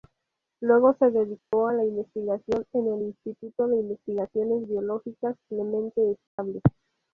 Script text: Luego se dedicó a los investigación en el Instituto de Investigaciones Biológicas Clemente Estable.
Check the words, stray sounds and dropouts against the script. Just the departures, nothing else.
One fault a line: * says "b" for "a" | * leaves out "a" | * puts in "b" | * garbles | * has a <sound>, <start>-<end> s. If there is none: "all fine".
* has a dropout, 1.4-1.5 s
* says "la" for "los"
* has a dropout, 6.3-6.4 s